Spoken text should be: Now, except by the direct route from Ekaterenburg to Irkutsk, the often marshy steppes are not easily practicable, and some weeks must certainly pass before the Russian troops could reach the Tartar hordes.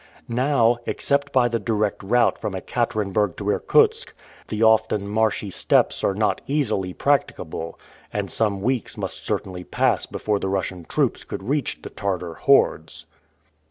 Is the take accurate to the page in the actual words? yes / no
yes